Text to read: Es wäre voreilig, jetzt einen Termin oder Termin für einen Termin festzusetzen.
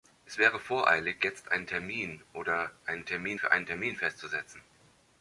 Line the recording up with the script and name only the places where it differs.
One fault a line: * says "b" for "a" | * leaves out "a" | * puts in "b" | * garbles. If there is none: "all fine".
* puts in "einen"